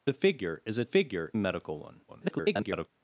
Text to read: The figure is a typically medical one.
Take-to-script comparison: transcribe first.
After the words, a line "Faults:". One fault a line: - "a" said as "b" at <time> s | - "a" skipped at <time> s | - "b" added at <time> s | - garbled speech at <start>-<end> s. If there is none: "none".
The figure is a figure medical one. [garbled]
Faults:
- "typically" said as "figure" at 0.8 s
- garbled speech at 2.1-2.9 s